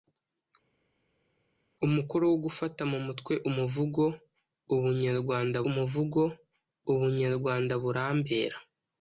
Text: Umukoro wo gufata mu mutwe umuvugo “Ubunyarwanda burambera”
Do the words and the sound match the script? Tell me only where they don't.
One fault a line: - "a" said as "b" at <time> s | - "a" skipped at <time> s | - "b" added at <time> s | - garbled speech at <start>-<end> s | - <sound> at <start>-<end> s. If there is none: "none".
- "umuvugo Ubunyarwanda" added at 5.7 s